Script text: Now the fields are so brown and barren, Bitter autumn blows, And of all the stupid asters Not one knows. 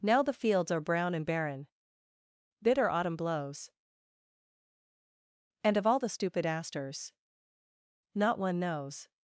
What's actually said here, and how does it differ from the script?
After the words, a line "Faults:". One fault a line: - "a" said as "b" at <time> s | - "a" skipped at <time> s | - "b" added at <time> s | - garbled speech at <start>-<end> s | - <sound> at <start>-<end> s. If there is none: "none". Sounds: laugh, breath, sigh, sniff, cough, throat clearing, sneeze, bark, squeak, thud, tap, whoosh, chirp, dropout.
Now the fields are brown and barren, Bitter autumn blows, And of all the stupid asters Not one knows.
Faults:
- "so" skipped at 0.8 s